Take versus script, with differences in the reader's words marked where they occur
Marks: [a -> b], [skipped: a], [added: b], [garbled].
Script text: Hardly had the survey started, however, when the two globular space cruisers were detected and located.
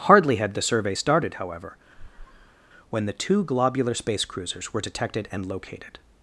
Hardly had the survey started, however, when the two globular space cruisers were detected and located.